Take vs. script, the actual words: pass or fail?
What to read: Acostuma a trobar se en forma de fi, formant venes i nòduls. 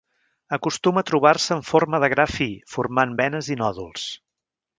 fail